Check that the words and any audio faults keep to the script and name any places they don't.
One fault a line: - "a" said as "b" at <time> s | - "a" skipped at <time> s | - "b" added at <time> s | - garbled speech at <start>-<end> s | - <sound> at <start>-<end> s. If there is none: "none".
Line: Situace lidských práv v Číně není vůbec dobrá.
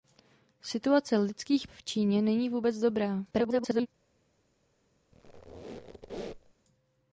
- "práv" skipped at 1.7 s
- garbled speech at 3.3-3.9 s
- squeak at 5.1-6.5 s